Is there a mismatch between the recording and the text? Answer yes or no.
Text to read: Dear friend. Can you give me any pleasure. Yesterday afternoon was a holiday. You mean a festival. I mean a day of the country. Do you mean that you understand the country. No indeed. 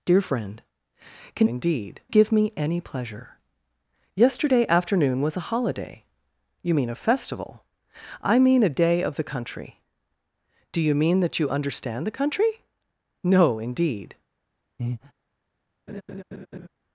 yes